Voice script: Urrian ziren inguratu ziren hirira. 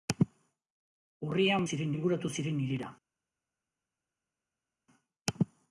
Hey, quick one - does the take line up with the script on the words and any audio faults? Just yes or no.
yes